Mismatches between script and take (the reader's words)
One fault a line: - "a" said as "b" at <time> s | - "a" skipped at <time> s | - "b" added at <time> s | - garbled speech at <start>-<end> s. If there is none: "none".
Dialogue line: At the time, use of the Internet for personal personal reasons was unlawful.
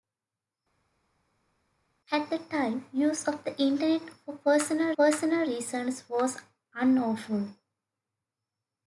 none